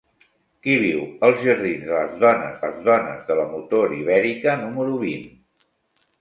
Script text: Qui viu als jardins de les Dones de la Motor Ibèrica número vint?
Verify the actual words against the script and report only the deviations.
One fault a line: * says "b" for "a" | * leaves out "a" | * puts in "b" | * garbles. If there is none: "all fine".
* puts in "les Dones"